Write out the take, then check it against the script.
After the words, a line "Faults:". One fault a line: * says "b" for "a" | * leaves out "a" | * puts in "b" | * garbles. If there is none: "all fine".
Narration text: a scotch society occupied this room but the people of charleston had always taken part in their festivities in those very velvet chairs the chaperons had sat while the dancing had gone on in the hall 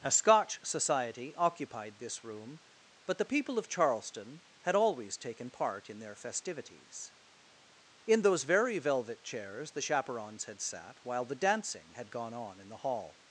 a scotch society occupied this room but the people of charleston had always taken part in their festivities in those very velvet chairs the chaperons had sat while the dancing had gone on in the hall
Faults:
all fine